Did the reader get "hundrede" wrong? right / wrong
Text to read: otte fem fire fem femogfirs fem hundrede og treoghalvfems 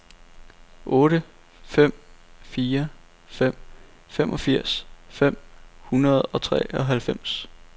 right